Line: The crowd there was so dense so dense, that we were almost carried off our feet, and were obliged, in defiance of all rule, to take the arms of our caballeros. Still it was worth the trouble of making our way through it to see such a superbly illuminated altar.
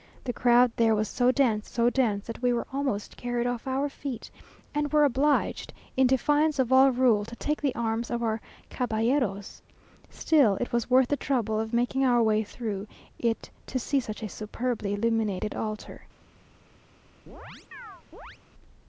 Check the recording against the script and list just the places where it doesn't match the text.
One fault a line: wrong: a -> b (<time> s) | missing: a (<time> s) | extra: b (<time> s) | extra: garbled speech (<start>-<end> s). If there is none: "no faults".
no faults